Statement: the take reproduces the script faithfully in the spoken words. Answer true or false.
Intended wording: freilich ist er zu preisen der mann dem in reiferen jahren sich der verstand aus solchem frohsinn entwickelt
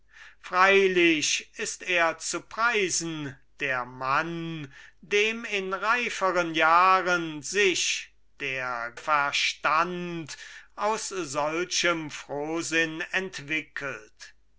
true